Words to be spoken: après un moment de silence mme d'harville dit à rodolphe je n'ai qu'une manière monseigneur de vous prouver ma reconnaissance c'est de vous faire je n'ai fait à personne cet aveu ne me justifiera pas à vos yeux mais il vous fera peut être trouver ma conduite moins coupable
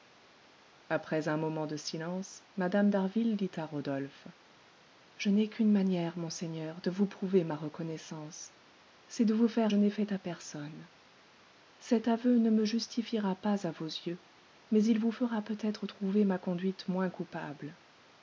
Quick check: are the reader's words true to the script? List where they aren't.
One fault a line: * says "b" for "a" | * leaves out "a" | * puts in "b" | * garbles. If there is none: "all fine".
all fine